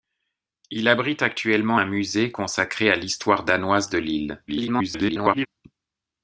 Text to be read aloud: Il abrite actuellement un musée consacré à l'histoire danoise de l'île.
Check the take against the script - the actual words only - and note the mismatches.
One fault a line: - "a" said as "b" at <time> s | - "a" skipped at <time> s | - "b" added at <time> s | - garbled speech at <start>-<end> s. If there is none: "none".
- garbled speech at 4.5-5.5 s